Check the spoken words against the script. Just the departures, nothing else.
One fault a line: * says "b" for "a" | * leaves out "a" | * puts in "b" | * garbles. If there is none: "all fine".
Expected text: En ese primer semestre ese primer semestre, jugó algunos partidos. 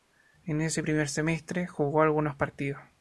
* leaves out "ese primer semestre"